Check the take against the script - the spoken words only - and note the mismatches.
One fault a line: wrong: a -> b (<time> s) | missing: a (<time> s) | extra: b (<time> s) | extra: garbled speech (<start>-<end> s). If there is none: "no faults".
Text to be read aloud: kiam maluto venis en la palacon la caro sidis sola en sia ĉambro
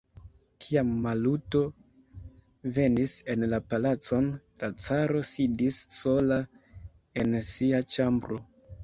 no faults